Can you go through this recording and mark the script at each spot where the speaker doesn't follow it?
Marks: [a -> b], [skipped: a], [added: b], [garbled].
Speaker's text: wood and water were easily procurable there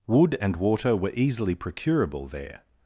wood and water were easily procurable there